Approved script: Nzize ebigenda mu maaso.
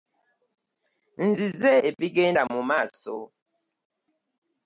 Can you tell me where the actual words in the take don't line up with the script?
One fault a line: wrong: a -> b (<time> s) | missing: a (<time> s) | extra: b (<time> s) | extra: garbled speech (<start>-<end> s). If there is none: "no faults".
no faults